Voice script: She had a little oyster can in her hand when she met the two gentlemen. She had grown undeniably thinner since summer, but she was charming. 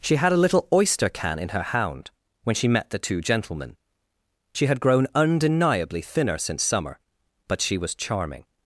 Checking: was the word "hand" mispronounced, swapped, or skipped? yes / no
yes